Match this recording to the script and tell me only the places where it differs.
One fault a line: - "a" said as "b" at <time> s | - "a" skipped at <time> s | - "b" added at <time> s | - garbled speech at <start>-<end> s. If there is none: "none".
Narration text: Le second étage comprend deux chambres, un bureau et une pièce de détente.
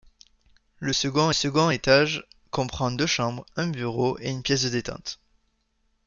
- "second" added at 1.3 s